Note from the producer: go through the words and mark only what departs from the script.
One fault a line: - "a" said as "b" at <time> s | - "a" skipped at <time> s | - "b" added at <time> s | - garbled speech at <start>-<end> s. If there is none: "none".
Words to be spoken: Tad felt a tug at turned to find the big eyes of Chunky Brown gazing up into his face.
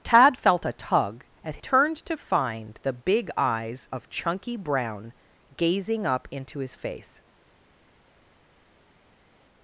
none